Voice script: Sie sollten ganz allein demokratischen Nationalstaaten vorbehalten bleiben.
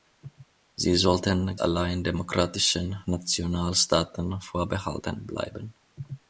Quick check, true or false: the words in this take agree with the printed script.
false